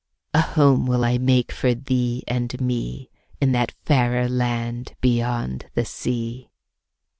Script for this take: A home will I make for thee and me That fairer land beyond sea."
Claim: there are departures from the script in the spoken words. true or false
true